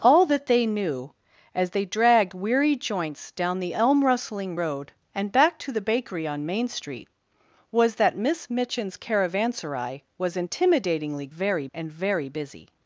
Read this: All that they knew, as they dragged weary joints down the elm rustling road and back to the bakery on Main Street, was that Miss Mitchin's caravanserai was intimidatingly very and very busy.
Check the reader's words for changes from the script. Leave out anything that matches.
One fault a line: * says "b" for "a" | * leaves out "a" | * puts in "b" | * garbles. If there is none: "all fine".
all fine